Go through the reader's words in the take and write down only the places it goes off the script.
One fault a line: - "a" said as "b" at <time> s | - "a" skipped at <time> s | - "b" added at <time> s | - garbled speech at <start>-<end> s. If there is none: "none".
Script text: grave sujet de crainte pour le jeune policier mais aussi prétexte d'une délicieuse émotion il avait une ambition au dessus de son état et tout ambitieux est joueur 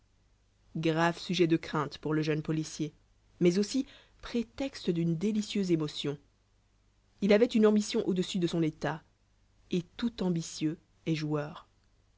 none